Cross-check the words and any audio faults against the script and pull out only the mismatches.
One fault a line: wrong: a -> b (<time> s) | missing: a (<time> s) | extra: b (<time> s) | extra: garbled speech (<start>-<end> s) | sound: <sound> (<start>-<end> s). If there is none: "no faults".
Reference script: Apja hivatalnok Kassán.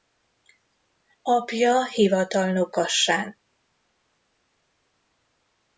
no faults